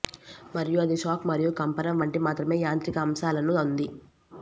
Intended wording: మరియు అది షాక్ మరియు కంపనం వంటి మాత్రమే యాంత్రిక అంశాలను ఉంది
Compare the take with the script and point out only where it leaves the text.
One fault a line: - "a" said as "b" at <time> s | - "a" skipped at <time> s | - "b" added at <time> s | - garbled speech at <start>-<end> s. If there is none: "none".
none